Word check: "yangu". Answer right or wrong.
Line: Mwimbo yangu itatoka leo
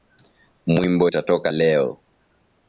wrong